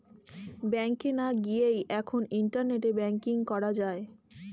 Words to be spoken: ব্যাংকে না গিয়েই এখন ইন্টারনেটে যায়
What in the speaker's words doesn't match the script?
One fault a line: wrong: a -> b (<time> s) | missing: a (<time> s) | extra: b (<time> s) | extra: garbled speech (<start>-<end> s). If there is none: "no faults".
extra: ব্যাঙ্কিং করা (3.0 s)